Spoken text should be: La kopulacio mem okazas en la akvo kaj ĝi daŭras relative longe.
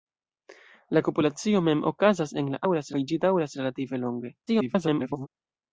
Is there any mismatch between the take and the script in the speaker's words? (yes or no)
yes